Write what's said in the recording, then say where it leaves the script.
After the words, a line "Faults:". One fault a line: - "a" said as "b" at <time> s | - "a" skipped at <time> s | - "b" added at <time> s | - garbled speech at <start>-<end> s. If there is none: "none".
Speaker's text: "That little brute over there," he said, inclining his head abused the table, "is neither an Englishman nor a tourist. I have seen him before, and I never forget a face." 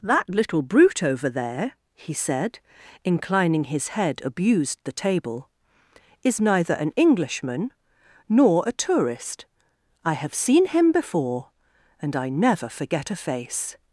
"That little brute over there," he said, inclining his head abused the table, "is neither an Englishman nor a tourist. I have seen him before, and I never forget a face."
Faults:
none